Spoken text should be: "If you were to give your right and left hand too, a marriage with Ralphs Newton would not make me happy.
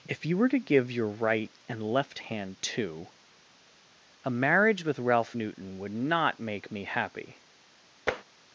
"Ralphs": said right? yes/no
no